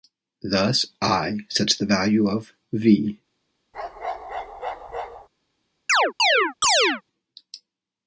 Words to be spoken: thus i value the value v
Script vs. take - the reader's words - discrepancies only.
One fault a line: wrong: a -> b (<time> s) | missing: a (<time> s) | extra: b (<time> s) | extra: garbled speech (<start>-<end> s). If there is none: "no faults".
wrong: value -> sets (1.5 s)
extra: of (2.3 s)